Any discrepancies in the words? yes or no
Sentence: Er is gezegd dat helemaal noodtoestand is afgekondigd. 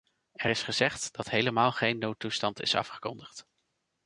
yes